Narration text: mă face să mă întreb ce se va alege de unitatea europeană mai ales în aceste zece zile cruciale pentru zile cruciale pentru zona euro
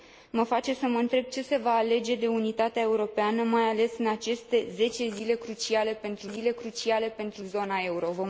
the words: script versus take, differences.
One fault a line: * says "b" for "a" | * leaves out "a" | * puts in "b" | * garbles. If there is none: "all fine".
all fine